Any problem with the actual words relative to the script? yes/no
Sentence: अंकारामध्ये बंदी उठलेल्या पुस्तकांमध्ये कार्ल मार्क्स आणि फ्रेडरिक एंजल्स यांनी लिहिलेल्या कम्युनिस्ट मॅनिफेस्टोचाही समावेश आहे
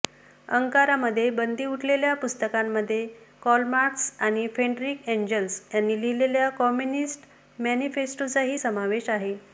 no